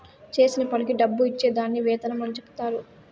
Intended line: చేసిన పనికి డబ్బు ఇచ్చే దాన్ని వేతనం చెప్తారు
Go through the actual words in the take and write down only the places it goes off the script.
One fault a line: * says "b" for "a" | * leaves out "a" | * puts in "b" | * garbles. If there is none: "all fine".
* puts in "అని"